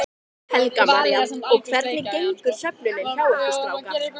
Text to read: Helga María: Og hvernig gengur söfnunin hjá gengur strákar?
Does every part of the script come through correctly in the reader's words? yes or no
no